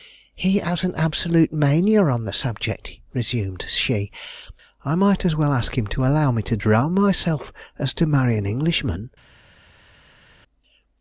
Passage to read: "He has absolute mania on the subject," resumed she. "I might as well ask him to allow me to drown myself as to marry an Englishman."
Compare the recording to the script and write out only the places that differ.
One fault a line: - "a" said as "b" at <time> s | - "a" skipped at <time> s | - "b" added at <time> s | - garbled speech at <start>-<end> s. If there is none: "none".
- "an" added at 0.8 s